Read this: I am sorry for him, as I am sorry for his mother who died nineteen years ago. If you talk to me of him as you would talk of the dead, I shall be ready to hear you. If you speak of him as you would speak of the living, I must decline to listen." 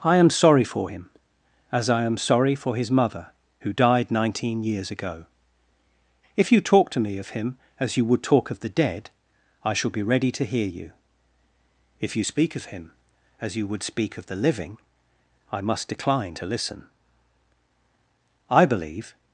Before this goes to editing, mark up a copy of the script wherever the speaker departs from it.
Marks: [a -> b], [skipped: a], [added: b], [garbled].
I am sorry for him, as I am sorry for his mother who died nineteen years ago. If you talk to me of him as you would talk of the dead, I shall be ready to hear you. If you speak of him as you would speak of the living, I must decline to listen." [added: I believe]